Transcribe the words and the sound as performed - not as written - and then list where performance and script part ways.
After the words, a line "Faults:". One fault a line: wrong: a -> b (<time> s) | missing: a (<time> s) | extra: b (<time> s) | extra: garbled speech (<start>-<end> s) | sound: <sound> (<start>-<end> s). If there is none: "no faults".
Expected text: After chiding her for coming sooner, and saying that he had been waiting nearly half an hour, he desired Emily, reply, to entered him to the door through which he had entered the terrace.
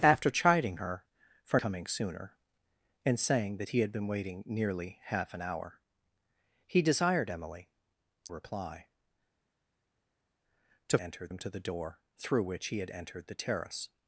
After chiding her for coming sooner, and saying that he had been waiting nearly half an hour, he desired Emily, reply, to entered him to the door through which he had entered the terrace.
Faults:
no faults